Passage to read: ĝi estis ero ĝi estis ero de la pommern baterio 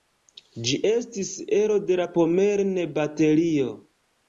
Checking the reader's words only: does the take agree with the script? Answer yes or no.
no